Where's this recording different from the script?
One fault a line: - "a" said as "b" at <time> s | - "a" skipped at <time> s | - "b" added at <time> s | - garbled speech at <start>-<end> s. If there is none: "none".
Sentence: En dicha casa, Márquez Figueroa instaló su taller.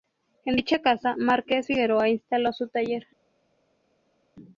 none